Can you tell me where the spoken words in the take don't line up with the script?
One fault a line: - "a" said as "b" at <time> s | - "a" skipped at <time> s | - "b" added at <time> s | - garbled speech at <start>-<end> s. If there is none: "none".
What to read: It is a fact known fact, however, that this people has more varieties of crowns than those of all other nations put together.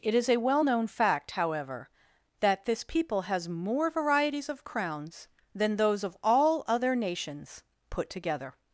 - "fact" said as "well" at 0.4 s